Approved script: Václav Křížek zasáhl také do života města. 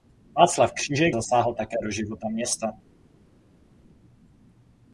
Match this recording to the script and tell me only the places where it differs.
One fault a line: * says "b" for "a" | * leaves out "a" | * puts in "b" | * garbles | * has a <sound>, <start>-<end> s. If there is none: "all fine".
all fine